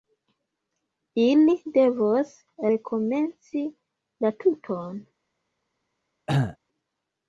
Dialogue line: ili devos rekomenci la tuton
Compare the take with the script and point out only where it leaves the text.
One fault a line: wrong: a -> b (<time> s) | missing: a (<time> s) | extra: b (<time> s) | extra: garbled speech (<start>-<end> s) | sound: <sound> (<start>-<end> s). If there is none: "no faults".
sound: cough (6.3-6.6 s)